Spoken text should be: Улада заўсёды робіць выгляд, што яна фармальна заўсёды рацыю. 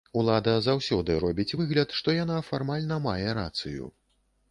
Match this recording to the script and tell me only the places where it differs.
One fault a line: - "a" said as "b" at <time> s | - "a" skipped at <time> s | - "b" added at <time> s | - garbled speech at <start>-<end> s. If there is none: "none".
- "заўсёды" said as "мае" at 3.1 s